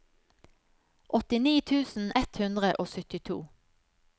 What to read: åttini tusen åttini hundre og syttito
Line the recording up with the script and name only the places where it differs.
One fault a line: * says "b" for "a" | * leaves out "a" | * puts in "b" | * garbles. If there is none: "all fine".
* says "ett" for "åttini"